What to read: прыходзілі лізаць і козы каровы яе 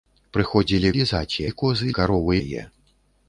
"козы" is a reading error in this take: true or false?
false